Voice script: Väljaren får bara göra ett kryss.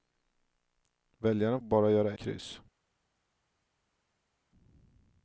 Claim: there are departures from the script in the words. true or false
true